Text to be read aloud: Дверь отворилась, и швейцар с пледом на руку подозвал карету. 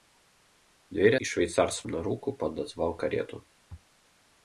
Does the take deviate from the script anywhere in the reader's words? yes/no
yes